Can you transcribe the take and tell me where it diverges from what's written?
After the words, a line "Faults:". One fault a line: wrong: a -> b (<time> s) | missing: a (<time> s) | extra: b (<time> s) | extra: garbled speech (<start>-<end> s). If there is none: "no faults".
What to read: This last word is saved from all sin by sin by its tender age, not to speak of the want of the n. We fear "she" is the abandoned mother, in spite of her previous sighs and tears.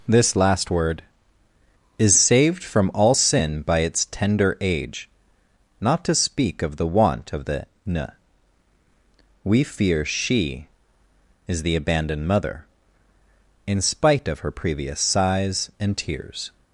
This last word is saved from all sin by its tender age, not to speak of the want of the n. We fear "she" is the abandoned mother, in spite of her previous sighs and tears.
Faults:
missing: sin by (3.8 s)